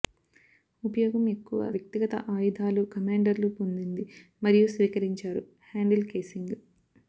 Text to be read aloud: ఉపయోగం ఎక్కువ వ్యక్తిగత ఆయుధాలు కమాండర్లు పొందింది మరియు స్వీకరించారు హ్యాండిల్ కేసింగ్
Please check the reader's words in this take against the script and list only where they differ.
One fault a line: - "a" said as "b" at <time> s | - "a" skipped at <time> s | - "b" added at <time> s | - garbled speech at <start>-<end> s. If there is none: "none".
none